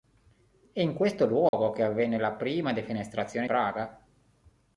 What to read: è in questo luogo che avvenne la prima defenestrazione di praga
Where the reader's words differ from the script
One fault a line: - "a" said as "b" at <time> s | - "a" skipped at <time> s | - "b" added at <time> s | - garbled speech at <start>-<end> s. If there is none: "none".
- "di" skipped at 3.5 s